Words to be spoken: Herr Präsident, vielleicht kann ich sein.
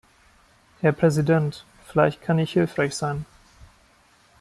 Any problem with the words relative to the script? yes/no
yes